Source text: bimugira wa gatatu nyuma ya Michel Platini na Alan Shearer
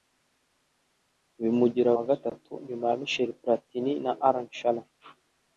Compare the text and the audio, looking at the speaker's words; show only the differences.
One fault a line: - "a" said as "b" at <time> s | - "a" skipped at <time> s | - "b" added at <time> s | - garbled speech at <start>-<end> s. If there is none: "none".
none